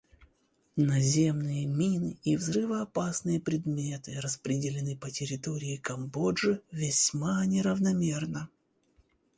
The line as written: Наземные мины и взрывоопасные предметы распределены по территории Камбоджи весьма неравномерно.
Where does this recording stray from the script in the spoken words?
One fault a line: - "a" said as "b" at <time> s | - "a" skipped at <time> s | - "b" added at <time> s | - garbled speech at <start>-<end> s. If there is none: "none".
none